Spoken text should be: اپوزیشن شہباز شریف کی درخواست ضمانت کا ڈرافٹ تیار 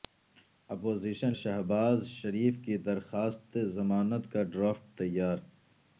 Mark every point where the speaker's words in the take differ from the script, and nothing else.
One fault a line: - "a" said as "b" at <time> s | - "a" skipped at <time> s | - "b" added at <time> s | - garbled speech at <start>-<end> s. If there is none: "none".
none